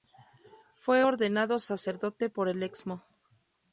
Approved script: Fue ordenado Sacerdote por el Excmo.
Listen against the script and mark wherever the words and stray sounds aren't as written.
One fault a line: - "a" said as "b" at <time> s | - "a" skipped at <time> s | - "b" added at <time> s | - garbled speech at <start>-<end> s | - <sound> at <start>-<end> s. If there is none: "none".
none